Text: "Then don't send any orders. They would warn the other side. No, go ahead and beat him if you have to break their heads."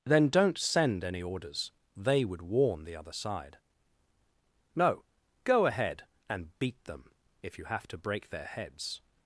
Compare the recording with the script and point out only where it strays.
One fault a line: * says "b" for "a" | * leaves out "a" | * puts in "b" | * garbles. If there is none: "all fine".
* says "them" for "him"